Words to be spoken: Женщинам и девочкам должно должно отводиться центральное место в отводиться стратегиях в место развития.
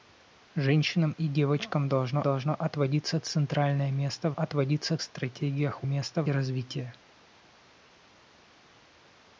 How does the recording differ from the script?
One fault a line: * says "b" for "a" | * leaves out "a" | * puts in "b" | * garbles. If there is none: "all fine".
all fine